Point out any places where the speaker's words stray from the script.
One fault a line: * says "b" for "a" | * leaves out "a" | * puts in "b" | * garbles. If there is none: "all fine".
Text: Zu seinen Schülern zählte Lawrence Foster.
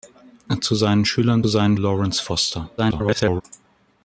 * says "seinen" for "zählte"
* garbles